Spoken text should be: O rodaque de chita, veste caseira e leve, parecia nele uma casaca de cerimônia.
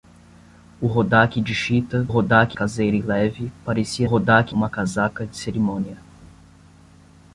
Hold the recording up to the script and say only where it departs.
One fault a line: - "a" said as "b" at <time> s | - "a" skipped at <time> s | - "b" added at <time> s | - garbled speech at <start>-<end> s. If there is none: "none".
- "veste" said as "rodaque" at 2.1 s
- "nele" said as "rodaque" at 4.0 s